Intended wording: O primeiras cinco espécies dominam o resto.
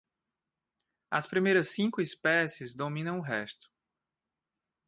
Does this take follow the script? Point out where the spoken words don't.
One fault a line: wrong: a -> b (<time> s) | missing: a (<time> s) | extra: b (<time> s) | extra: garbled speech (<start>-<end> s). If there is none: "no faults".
wrong: O -> As (1.1 s)